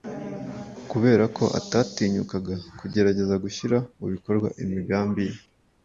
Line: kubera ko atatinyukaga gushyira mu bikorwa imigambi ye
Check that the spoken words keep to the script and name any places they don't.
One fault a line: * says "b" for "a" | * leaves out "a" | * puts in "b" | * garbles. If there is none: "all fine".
* puts in "kugerageza"